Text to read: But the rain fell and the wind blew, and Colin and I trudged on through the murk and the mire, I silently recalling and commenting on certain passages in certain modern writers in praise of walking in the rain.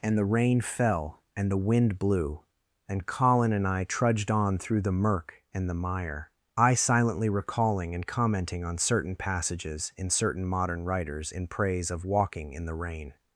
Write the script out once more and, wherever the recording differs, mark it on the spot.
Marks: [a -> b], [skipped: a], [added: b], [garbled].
[But -> And] the rain fell and the wind blew, and Colin and I trudged on through the murk and the mire, I silently recalling and commenting on certain passages in certain modern writers in praise of walking in the rain.